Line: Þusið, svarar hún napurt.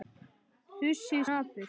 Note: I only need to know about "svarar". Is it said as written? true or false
false